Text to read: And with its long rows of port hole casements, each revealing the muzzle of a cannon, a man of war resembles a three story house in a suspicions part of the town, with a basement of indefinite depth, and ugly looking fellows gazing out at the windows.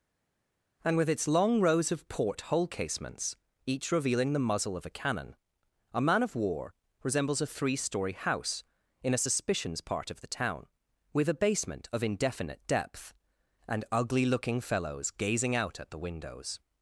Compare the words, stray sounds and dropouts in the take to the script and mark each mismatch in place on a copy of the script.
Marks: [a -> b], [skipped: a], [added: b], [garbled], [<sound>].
And with its long rows of port hole casements, each revealing the muzzle of a cannon, a man of war resembles a three story house in a suspicions part of the town, with a basement of indefinite depth, and ugly looking fellows gazing out at the windows.